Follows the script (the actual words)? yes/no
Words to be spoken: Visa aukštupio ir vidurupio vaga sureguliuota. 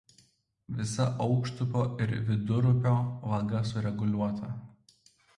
yes